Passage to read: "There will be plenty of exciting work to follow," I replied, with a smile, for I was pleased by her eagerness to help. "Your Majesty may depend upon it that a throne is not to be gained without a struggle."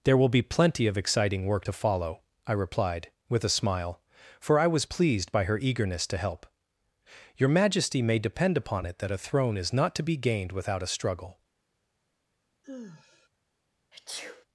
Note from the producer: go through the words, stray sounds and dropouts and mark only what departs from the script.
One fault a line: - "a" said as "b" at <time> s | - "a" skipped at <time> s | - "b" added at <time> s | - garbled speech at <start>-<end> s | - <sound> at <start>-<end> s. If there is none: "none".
- sigh at 12.6-13.3 s
- sneeze at 13.9-14.5 s